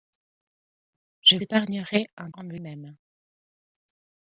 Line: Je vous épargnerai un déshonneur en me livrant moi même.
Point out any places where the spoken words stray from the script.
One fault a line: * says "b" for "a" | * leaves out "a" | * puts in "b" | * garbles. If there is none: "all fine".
* leaves out "vous"
* leaves out "déshonneur"
* leaves out "livrant moi"